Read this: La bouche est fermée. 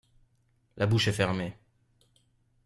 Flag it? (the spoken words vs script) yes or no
no